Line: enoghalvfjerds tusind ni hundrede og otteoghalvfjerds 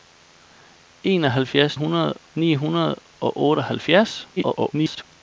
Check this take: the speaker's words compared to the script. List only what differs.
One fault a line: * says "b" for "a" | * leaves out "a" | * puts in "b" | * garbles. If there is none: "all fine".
* says "hundrede" for "tusind"
* garbles